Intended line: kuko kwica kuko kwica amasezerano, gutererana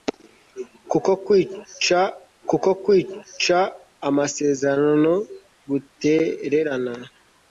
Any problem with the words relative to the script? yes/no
no